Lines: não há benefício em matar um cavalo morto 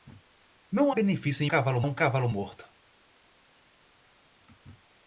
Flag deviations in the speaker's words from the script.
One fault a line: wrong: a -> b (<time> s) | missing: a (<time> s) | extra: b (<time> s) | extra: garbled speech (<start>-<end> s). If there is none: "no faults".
missing: há (0.9 s)
wrong: matar -> cavalo (1.4 s)